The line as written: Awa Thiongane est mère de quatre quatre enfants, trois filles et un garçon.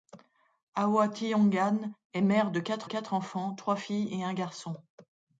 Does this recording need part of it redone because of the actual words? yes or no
no